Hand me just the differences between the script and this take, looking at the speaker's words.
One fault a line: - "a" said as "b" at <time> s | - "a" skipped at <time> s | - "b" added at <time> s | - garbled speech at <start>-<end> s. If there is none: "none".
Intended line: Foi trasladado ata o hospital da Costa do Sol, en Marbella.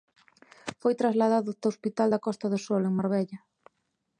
none